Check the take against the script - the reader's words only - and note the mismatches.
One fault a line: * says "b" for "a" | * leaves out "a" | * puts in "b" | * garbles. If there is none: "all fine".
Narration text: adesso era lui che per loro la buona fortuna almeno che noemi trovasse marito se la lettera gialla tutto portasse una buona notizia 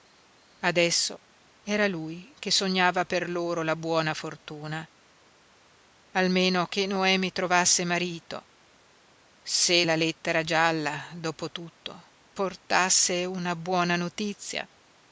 * puts in "sognava"
* puts in "dopo"